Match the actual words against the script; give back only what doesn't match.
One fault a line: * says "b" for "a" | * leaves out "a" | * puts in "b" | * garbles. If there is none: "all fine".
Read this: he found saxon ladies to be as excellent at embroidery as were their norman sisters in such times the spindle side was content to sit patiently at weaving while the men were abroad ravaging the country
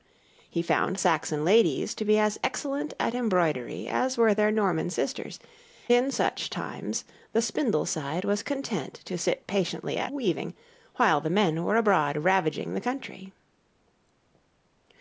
all fine